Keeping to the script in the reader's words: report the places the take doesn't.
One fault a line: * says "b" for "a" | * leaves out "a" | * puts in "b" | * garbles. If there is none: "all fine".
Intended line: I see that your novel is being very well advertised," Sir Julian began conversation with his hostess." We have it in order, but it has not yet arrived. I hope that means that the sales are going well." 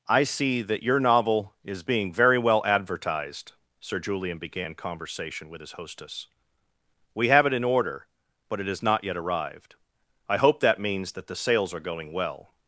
all fine